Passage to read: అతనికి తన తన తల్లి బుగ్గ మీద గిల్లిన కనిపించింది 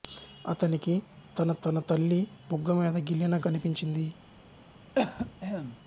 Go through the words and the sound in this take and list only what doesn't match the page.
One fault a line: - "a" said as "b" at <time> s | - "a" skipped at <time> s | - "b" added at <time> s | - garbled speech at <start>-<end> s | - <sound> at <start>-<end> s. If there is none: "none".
- cough at 4.9-5.8 s